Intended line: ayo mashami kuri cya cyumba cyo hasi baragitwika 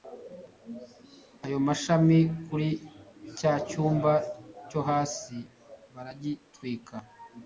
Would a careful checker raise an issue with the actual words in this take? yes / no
no